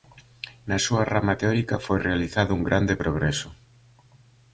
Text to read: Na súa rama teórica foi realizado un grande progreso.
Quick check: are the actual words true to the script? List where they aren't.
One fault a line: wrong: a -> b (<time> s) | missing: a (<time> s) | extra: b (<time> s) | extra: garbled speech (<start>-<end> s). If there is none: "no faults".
no faults